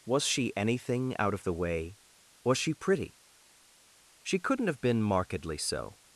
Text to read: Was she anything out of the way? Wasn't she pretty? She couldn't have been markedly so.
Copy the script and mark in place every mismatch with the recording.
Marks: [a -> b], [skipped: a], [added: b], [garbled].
Was she anything out of the way? [Wasn't -> Was] she pretty? She couldn't have been markedly so.